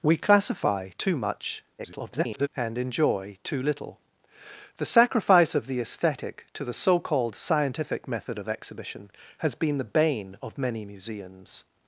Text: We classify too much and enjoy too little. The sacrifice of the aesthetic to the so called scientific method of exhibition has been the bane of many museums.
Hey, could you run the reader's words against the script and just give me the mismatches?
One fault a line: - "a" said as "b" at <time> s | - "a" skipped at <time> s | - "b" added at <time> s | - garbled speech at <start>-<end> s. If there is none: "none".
- garbled speech at 1.8-2.5 s